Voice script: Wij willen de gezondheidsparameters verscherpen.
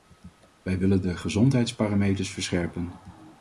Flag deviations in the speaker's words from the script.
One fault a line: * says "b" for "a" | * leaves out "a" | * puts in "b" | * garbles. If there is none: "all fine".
all fine